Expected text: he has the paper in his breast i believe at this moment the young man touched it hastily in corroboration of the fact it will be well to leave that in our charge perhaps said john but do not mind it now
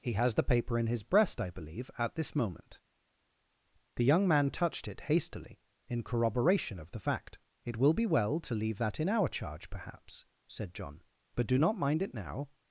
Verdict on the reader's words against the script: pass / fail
pass